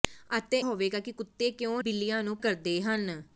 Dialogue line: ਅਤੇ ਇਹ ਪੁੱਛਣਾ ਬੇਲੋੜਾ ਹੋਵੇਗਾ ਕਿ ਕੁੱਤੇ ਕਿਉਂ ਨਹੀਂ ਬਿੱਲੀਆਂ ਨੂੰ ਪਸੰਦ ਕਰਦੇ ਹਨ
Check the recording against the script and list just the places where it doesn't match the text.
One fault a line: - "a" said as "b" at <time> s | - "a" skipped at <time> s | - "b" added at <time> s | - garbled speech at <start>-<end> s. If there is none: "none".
- "ਇਹ ਪੁੱਛਣਾ ਬੇਲੋੜਾ" skipped at 0.6 s
- "ਨਹੀਂ" skipped at 1.8 s
- "ਪਸੰਦ" skipped at 2.4 s